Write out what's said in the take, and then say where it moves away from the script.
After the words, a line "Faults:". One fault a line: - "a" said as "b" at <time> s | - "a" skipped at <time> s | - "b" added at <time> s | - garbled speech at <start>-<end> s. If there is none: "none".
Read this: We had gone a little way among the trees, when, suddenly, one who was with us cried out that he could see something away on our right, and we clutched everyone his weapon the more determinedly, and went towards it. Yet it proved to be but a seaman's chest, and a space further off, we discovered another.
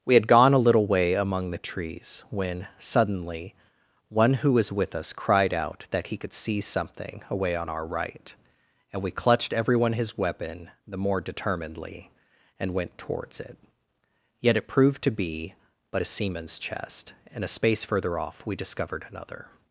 We had gone a little way among the trees, when, suddenly, one who was with us cried out that he could see something away on our right, and we clutched everyone his weapon the more determinedly, and went towards it. Yet it proved to be but a seaman's chest, and a space further off, we discovered another.
Faults:
none